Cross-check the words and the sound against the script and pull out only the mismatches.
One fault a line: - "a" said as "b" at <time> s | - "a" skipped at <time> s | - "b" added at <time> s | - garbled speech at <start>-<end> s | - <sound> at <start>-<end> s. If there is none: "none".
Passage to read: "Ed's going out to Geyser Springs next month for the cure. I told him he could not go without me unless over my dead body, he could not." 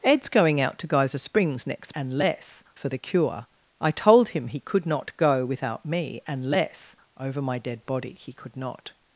- "month" said as "unless" at 1.9 s